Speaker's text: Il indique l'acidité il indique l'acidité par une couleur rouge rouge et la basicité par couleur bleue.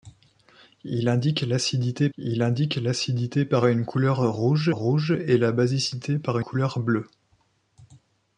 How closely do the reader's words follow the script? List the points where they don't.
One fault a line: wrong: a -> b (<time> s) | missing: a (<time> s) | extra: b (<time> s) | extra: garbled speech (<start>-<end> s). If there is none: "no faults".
no faults